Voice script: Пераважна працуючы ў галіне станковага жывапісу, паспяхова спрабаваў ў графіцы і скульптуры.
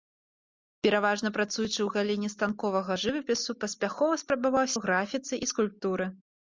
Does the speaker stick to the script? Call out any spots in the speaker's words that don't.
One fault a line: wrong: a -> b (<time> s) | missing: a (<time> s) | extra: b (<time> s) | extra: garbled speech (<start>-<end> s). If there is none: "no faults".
no faults